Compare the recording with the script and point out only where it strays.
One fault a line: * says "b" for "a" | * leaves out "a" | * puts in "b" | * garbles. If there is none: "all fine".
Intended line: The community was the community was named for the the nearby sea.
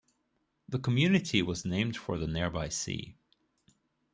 * leaves out "the community was"
* leaves out "the"